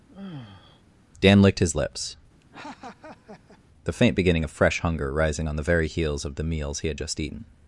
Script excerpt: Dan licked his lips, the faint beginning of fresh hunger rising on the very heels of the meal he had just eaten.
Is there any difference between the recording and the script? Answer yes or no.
yes